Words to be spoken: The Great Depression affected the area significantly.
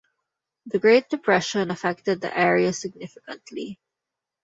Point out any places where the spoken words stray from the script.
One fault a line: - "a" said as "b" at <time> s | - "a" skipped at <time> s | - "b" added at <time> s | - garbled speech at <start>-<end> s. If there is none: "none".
none